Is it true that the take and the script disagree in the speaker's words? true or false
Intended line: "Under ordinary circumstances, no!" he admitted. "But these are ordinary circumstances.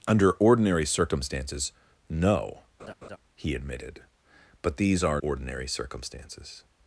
false